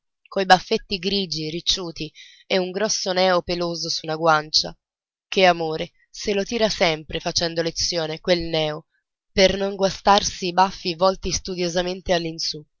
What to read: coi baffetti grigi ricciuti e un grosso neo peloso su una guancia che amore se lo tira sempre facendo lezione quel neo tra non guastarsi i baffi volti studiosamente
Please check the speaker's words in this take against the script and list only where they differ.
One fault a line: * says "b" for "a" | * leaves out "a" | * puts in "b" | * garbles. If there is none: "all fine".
* says "per" for "tra"